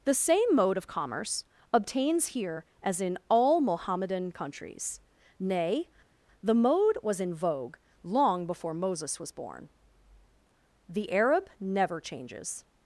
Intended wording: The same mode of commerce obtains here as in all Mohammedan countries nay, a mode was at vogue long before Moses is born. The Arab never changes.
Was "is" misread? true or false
true